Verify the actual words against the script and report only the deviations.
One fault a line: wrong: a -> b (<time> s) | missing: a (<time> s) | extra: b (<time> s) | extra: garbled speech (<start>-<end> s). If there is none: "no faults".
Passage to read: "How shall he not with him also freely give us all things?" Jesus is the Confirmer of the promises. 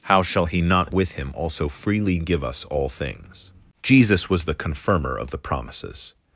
wrong: is -> was (4.3 s)